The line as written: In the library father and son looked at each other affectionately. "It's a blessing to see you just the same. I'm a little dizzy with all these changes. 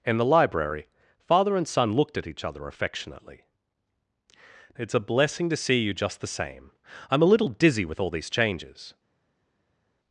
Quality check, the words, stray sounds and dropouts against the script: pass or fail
pass